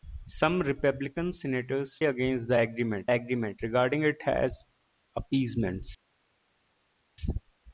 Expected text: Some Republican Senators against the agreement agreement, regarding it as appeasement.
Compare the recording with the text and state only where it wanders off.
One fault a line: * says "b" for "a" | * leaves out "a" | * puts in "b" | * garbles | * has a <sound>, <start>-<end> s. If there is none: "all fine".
all fine